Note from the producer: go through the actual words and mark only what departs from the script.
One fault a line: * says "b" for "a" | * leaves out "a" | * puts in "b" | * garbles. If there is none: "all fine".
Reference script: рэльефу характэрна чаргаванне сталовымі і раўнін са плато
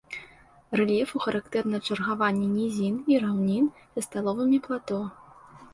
* says "нізін" for "сталовымі"
* puts in "сталовымі"